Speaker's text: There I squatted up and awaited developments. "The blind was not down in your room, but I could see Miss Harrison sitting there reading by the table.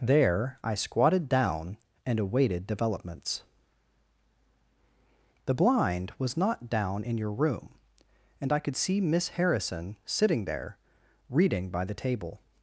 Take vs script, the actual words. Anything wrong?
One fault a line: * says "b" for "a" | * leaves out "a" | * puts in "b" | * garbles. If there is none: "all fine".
* says "down" for "up"
* says "and" for "but"